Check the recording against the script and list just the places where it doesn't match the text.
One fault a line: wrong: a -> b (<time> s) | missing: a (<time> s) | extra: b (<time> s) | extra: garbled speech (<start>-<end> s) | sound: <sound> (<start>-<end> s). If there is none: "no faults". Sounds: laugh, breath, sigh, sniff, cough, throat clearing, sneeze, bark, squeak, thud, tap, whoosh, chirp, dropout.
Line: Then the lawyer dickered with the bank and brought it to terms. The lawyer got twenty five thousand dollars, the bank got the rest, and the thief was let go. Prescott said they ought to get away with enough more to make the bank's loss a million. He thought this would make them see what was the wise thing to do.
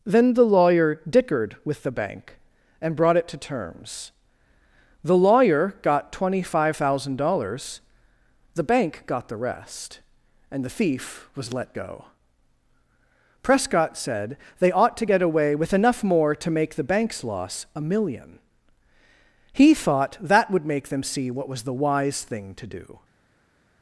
wrong: this -> that (20.2 s)